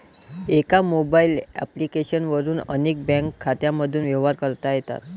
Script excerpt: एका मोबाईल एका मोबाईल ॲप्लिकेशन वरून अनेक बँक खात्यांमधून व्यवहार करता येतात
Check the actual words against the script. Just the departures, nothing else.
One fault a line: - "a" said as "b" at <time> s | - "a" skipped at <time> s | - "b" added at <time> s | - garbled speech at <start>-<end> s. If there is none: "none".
- "एका मोबाईल" skipped at 1.4 s